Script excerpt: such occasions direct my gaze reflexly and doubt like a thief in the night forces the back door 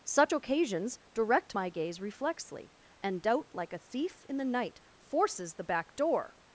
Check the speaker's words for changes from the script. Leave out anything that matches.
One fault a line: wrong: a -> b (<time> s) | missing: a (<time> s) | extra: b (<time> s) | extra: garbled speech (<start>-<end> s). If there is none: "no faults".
no faults